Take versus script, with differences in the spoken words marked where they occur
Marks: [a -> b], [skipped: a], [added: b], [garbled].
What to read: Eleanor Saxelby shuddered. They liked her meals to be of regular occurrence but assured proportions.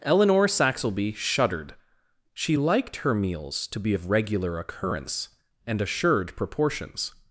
Eleanor Saxelby shuddered. [They -> She] liked her meals to be of regular occurrence [but -> and] assured proportions.